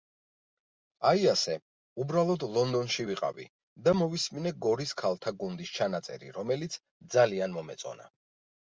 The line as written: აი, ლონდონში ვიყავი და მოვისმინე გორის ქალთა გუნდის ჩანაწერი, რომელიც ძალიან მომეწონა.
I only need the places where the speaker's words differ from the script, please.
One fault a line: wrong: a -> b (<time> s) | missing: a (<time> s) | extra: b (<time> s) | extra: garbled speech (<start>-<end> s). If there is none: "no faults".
extra: ასე უბრალოდ (1.3 s)